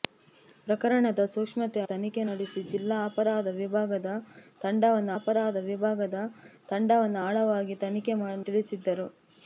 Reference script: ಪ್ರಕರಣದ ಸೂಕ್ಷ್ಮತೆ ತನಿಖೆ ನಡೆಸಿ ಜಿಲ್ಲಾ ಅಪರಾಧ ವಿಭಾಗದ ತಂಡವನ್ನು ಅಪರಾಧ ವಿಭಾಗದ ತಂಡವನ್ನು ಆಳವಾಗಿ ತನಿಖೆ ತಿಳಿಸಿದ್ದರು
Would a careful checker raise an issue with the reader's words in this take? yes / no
no